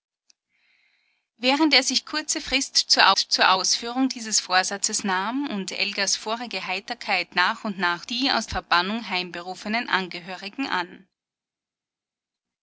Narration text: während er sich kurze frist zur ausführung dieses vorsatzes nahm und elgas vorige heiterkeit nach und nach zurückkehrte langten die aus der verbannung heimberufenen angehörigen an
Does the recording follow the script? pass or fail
fail